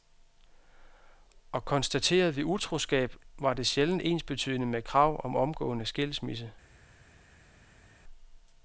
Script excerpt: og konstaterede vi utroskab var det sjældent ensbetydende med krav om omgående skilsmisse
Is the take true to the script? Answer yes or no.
yes